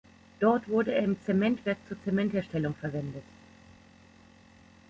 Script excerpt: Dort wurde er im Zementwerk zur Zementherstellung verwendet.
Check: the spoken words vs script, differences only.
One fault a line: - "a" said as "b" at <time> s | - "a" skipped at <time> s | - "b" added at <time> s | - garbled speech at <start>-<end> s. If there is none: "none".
none